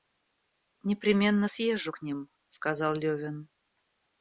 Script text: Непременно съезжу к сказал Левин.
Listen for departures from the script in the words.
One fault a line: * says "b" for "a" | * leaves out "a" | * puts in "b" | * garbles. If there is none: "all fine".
* puts in "ним"